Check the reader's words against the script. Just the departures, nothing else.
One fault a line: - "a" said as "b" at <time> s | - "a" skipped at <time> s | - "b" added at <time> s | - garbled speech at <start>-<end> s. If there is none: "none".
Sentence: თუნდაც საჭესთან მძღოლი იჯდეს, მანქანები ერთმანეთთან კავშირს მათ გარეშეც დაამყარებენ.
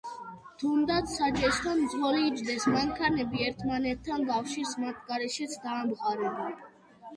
none